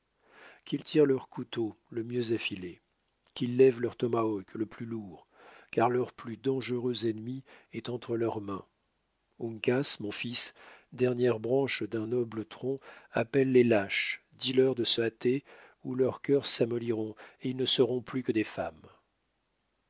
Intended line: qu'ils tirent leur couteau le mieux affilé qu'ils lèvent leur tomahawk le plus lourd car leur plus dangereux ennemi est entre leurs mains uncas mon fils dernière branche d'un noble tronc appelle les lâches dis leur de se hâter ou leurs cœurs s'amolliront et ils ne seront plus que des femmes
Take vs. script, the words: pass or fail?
pass